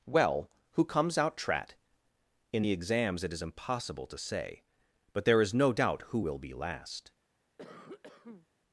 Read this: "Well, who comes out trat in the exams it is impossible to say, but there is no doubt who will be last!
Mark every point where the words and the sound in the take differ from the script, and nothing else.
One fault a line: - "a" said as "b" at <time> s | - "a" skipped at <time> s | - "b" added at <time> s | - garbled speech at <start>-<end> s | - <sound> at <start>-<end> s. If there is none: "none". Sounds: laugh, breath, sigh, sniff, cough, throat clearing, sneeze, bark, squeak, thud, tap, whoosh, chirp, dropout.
- cough at 7.6-8.5 s